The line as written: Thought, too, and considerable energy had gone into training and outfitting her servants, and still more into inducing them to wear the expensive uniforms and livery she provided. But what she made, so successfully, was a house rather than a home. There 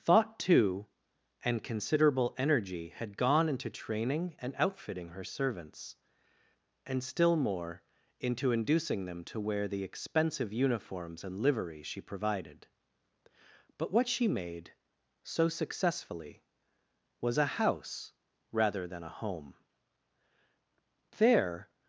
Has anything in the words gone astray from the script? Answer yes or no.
no